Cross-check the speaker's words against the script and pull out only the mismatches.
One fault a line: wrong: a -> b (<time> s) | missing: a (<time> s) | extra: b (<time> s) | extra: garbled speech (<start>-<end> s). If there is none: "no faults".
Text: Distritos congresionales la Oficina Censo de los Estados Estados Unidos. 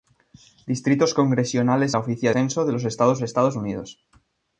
no faults